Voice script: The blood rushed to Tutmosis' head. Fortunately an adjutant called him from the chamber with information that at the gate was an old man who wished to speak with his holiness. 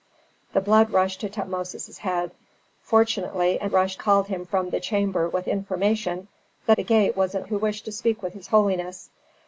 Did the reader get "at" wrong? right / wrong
wrong